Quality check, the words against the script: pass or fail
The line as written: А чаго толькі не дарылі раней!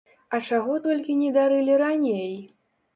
pass